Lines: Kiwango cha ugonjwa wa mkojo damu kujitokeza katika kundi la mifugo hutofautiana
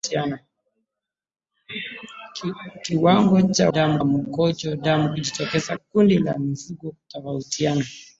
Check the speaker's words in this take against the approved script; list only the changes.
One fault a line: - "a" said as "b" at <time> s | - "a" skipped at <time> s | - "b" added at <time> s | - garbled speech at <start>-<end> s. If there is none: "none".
- "ugonjwa" said as "damu" at 3.7 s
- "katika" skipped at 5.8 s